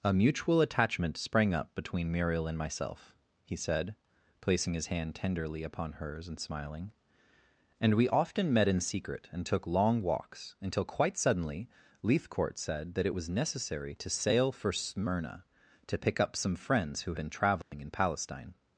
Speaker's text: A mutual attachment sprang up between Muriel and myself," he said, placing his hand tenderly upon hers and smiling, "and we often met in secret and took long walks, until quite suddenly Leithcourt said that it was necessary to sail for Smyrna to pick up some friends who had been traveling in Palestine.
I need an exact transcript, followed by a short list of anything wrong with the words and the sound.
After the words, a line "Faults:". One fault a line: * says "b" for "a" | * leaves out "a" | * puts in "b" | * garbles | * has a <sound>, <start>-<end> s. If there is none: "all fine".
A mutual attachment sprang up between Muriel and myself," he said, placing his hand tenderly upon hers and smiling, "and we often met in secret and took long walks, until quite suddenly Leithcourt said that it was necessary to sail for Smyrna to pick up some friends who been traveling in Palestine.
Faults:
* leaves out "had"
* has a dropout, 17.6-17.7 s